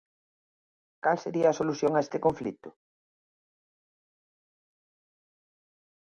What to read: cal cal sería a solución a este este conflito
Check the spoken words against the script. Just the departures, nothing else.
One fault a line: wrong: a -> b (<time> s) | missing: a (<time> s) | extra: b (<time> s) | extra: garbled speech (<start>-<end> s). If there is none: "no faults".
missing: cal (1.2 s)
missing: este (2.2 s)